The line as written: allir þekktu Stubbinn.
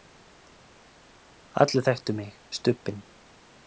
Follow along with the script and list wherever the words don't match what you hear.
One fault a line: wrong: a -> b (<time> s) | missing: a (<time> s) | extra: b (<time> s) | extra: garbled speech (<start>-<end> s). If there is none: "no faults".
extra: mig (2.2 s)